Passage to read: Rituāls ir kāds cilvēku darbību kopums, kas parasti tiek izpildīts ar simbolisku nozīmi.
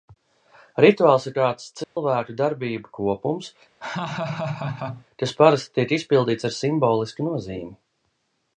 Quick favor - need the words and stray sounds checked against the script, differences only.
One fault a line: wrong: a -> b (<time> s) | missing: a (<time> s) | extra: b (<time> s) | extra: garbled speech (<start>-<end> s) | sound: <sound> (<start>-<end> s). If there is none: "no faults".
sound: dropout (1.8-2.0 s)
sound: laugh (3.8-5.1 s)